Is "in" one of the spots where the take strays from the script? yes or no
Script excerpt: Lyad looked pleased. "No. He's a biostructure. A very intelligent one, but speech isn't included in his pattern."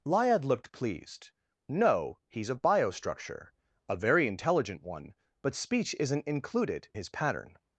yes